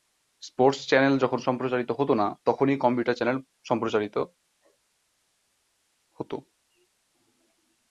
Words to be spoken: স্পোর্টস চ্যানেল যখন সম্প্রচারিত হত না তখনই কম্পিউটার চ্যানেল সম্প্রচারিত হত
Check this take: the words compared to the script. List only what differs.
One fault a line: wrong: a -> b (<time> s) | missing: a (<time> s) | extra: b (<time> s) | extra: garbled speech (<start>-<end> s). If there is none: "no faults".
no faults